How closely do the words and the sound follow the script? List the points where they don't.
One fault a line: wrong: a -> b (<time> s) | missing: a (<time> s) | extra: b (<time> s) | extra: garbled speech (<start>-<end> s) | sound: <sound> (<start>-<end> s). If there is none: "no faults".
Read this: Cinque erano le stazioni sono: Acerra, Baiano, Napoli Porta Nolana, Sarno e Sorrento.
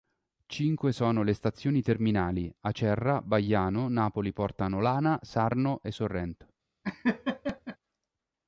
wrong: erano -> sono (0.9 s)
wrong: sono -> terminali (1.8 s)
sound: laugh (6.8-7.8 s)